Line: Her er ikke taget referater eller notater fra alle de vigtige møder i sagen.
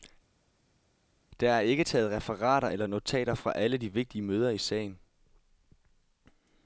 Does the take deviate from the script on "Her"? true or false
true